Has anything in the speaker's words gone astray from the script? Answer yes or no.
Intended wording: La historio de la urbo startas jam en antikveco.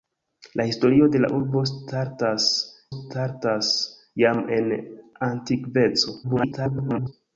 yes